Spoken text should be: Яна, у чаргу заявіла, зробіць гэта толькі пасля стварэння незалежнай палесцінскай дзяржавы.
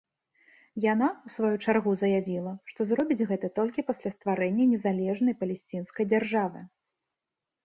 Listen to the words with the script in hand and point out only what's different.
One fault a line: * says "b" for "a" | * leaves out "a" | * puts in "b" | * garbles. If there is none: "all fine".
* puts in "сваю"
* puts in "што"